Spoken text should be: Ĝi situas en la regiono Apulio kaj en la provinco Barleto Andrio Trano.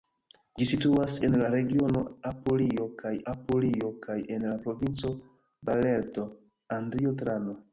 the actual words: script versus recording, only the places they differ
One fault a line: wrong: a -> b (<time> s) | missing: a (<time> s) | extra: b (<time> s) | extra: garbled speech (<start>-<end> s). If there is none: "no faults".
extra: Apulio kaj (3.3 s)